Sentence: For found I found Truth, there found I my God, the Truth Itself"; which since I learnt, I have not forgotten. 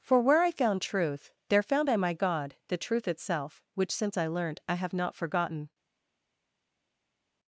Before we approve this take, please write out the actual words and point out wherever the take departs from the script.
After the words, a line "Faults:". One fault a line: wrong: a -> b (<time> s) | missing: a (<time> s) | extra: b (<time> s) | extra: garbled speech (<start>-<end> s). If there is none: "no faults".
For where I found Truth, there found I my God, the Truth Itself"; which since I learnt, I have not forgotten.
Faults:
wrong: found -> where (0.2 s)